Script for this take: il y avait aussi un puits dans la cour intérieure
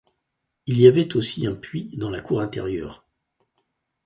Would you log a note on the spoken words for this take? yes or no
no